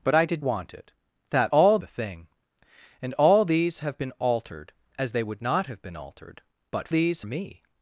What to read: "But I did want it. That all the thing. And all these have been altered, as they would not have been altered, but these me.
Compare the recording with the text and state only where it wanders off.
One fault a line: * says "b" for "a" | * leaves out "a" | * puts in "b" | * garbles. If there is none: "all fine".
all fine